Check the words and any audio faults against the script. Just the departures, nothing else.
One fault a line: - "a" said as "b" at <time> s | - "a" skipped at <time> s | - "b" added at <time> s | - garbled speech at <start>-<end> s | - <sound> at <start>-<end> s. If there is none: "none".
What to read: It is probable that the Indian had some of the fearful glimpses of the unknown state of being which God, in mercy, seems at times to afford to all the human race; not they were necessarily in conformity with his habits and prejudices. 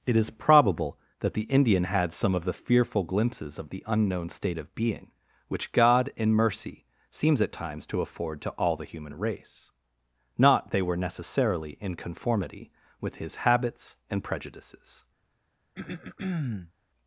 - throat clearing at 15.7-16.7 s